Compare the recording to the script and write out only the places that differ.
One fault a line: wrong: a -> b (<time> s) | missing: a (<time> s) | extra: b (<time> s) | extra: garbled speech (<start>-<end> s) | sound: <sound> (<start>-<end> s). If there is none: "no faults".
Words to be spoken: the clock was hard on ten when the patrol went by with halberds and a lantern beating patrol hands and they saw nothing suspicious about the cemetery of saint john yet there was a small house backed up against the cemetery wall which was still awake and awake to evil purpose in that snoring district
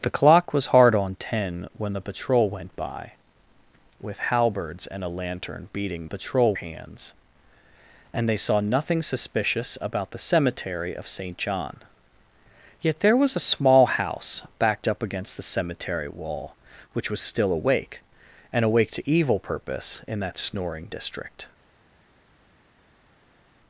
no faults